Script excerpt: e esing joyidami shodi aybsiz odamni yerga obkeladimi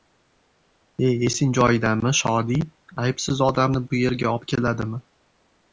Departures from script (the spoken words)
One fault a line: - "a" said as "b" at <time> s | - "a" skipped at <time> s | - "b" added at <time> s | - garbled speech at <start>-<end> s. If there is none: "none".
- "bu" added at 3.9 s